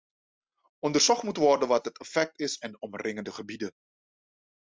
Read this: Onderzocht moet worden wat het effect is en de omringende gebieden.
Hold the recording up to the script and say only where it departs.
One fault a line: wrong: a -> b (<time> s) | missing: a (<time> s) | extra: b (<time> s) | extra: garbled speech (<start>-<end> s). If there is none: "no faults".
no faults